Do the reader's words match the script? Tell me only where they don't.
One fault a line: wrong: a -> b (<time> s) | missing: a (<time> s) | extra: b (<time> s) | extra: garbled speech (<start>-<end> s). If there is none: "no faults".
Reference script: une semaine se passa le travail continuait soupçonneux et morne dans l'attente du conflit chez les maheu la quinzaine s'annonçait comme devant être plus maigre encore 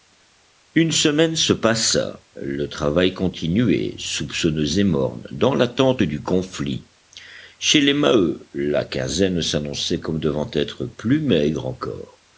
no faults